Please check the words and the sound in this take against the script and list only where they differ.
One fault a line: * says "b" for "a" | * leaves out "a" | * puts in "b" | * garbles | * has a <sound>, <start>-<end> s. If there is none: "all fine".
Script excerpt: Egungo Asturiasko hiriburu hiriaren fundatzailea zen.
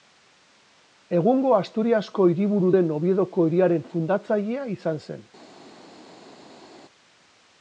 * puts in "den Oviedoko"
* puts in "izan"